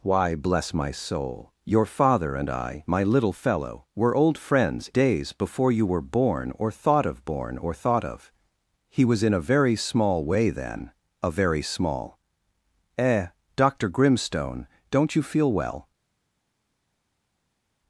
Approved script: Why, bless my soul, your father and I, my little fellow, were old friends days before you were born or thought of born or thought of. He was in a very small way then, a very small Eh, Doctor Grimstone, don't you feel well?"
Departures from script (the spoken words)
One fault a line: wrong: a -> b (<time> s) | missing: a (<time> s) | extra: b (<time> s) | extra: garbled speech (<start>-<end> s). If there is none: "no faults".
no faults